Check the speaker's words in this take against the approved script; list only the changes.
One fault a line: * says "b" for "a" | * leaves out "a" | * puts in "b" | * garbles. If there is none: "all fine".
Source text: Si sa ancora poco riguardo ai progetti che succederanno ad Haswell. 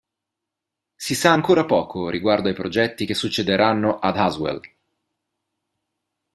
all fine